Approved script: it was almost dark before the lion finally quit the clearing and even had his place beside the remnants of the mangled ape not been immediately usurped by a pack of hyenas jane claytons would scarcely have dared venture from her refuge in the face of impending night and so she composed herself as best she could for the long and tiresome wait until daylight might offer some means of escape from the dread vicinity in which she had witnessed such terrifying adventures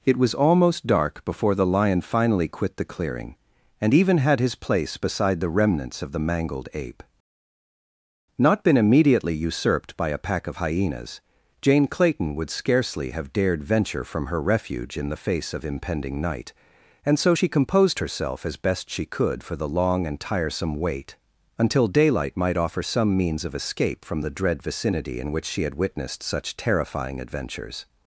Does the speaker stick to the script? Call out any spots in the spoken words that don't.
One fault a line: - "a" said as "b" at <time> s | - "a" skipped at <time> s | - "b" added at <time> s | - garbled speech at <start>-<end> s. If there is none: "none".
- "claytons" said as "clayton" at 11.9 s